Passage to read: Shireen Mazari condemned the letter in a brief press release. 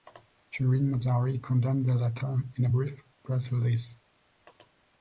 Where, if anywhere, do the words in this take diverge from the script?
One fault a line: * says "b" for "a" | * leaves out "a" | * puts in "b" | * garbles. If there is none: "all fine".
all fine